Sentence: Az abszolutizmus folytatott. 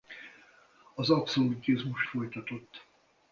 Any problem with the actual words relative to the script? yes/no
no